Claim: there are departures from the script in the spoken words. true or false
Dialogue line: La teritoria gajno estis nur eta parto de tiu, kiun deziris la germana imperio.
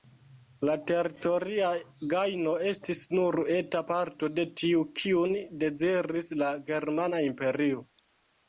false